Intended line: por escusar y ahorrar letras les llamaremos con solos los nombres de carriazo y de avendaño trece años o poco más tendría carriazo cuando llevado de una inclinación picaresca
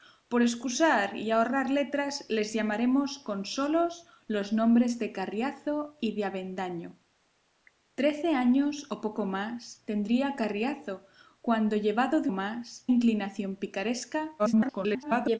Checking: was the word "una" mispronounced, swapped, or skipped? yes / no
yes